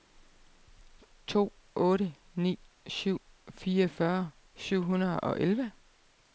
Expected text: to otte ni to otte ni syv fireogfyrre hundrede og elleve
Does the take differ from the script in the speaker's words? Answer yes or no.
yes